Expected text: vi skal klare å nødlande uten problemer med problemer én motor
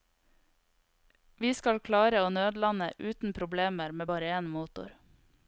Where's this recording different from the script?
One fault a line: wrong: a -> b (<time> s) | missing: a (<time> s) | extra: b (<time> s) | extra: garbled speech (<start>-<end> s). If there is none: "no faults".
wrong: problemer -> bare (4.1 s)